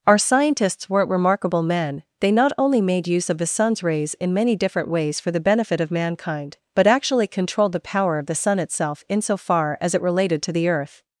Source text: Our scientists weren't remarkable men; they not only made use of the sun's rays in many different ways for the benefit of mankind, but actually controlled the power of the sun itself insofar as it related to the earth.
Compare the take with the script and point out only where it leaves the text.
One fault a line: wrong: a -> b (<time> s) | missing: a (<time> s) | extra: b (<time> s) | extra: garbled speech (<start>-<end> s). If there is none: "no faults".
no faults